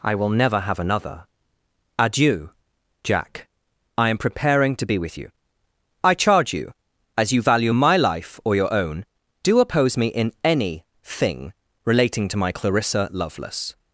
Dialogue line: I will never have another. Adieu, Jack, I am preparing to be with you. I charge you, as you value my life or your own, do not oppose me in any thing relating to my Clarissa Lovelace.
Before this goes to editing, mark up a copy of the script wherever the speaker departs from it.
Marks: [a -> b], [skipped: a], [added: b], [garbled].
I will never have another. Adieu, Jack, I am preparing to be with you. I charge you, as you value my life or your own, do [skipped: not] oppose me in any thing relating to my Clarissa Lovelace.